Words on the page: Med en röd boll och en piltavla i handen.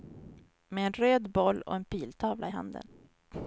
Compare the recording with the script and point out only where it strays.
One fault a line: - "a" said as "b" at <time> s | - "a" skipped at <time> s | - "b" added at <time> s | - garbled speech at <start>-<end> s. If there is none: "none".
none